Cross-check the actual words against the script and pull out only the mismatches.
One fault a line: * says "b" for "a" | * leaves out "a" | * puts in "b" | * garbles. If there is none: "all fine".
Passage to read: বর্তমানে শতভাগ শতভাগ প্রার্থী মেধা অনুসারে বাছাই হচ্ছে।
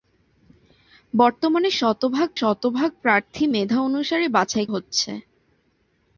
all fine